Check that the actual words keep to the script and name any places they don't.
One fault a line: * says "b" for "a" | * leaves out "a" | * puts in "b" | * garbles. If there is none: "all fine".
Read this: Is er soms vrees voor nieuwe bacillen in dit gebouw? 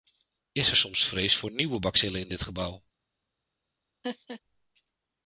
all fine